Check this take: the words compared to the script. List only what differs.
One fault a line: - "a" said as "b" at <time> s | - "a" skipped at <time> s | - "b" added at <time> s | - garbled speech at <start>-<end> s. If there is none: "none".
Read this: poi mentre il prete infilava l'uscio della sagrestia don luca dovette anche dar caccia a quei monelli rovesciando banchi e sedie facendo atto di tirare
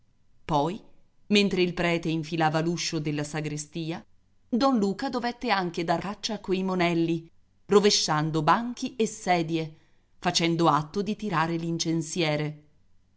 none